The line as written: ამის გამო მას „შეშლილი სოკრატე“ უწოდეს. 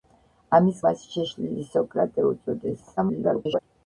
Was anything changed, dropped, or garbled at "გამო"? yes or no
yes